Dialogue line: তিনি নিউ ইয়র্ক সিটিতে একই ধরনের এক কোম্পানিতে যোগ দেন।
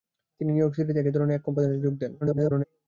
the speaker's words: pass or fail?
fail